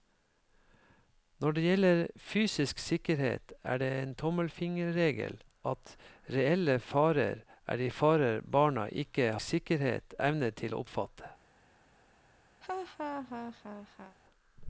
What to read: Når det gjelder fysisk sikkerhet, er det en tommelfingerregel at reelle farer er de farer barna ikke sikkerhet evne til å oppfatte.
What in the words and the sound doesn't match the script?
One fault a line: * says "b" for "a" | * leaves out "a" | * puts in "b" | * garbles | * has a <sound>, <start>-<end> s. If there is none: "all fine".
* has a laugh, 12.6-14.2 s